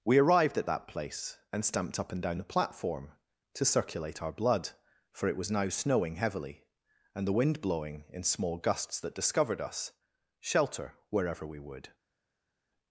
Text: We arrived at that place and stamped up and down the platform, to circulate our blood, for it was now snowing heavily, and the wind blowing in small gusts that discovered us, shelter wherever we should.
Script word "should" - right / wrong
wrong